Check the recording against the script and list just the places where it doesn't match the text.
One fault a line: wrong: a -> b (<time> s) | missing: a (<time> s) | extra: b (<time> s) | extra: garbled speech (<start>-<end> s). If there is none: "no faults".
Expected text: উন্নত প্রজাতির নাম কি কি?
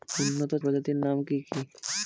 no faults